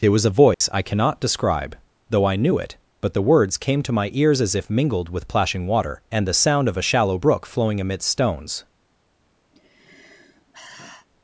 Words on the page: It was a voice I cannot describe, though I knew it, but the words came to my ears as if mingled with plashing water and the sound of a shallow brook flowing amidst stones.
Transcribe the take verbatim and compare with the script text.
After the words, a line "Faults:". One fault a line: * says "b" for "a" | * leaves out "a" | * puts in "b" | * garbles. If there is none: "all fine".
It was a voice I cannot describe, though I knew it, but the words came to my ears as if mingled with plashing water and the sound of a shallow brook flowing amidst stones.
Faults:
all fine